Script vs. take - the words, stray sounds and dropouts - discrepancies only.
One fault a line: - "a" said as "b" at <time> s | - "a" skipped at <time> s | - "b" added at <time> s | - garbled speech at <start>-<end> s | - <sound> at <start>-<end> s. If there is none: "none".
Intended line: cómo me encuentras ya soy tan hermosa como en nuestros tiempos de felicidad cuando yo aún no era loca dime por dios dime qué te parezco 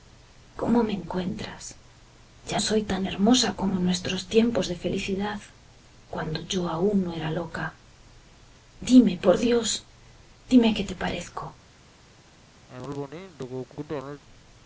- cough at 12.7-14.2 s